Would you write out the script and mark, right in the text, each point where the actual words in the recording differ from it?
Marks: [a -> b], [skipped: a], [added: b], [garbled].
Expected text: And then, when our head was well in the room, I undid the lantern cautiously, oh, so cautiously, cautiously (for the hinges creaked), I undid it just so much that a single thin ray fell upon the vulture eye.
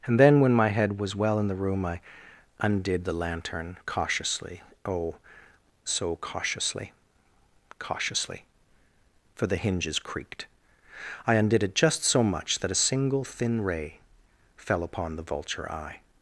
And then, when [our -> my] head was well in the room, I undid the lantern cautiously, oh, so cautiously, cautiously (for the hinges creaked), I undid it just so much that a single thin ray fell upon the vulture eye.